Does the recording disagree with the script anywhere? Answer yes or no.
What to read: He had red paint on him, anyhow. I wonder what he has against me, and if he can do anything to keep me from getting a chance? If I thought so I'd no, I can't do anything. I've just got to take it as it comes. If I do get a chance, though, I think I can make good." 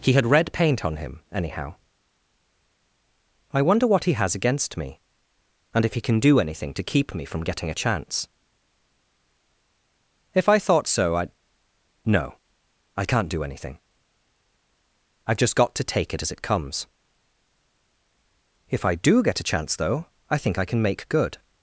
no